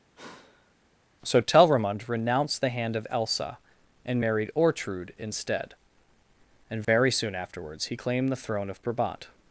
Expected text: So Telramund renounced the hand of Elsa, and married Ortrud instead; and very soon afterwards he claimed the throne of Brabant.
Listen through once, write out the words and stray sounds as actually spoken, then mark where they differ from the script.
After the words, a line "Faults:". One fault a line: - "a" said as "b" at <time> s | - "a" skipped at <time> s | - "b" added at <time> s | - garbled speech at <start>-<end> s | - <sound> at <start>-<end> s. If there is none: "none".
So Telramund renounced the hand of Elsa, and married Ortrud instead; and very soon afterwards he claimed the throne of Brabant.
Faults:
- sigh at 0.2-0.8 s
- dropout at 6.8-6.9 s